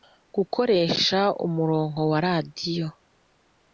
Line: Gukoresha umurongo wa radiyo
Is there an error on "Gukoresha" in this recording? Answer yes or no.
no